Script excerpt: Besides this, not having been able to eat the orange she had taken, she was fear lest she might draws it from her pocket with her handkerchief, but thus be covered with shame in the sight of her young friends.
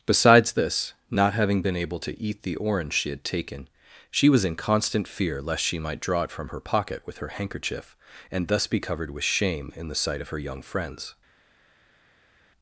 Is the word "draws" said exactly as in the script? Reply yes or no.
no